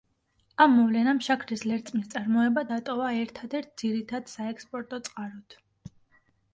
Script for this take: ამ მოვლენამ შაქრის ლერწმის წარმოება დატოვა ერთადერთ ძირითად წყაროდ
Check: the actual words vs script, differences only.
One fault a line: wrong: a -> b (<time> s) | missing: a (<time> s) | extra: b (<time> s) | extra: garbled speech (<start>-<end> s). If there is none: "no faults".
extra: საექსპორტო (4.4 s)